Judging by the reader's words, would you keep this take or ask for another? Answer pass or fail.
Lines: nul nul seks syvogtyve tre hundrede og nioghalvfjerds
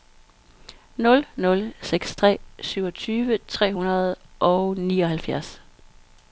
fail